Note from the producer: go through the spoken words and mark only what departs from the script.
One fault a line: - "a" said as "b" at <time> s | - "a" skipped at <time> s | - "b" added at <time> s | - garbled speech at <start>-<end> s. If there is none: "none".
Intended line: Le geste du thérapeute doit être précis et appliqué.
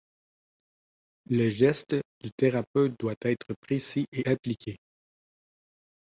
none